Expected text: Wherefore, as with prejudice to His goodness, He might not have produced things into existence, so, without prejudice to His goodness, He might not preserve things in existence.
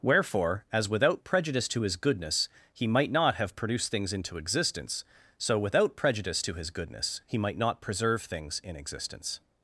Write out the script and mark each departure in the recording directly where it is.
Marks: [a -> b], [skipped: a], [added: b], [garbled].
Wherefore, as [with -> without] prejudice to His goodness, He might not have produced things into existence, so, without prejudice to His goodness, He might not preserve things in existence.